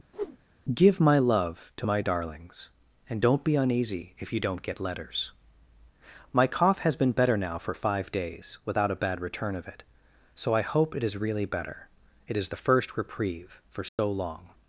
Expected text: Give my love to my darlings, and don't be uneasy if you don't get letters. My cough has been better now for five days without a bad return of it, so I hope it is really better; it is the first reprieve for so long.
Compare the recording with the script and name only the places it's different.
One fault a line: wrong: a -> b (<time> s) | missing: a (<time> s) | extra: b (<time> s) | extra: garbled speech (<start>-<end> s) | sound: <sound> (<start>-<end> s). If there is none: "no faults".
sound: whoosh (0.1-0.4 s)
sound: dropout (13.9-14.0 s)